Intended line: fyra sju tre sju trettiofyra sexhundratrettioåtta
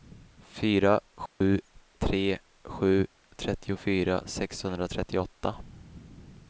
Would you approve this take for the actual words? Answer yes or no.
yes